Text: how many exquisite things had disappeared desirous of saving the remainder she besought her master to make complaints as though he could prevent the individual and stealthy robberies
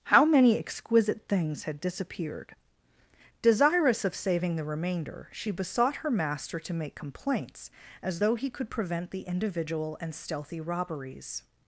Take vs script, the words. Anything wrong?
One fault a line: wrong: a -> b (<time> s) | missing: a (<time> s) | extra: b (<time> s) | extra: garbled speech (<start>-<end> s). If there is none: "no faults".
no faults